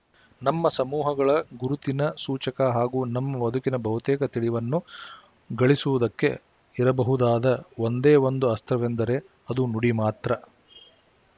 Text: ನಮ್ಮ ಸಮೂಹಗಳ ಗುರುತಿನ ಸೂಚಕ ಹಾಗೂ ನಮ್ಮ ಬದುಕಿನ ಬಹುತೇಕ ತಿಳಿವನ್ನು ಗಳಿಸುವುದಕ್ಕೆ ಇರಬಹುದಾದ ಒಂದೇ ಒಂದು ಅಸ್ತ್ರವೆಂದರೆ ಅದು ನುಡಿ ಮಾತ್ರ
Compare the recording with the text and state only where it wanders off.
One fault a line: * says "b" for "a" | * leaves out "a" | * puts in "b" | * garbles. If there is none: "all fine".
all fine